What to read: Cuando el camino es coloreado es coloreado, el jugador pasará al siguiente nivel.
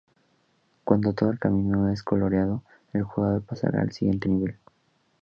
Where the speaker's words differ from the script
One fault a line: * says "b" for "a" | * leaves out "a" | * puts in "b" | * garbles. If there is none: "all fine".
* puts in "todo"
* leaves out "es coloreado"